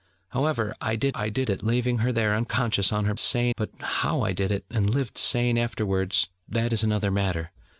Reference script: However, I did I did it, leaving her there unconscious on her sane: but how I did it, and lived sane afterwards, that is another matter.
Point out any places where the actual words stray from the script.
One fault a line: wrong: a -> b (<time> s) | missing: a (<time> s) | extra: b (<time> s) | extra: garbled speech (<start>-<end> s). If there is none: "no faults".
no faults